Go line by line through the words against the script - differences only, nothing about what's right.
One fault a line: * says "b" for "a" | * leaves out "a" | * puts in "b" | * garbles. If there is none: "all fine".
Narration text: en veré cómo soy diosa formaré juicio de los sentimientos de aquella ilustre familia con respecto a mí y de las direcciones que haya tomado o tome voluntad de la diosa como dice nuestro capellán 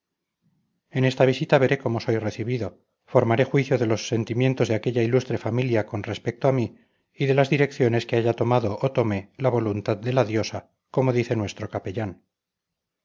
* puts in "esta visita"
* says "recibido" for "diosa"
* puts in "la"